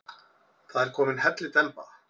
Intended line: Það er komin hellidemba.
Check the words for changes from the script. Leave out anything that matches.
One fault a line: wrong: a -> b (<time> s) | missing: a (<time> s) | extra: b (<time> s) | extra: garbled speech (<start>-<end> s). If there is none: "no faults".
no faults